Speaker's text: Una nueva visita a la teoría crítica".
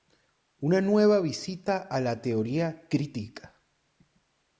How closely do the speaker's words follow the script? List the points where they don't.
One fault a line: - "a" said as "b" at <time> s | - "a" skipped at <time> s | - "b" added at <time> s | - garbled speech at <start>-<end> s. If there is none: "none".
none